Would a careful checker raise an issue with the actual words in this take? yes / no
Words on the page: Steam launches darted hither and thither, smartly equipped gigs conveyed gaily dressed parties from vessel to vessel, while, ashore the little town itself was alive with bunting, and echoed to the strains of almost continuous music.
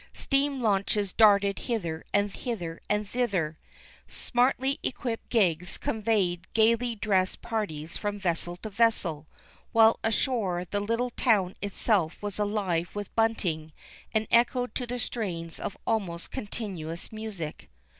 yes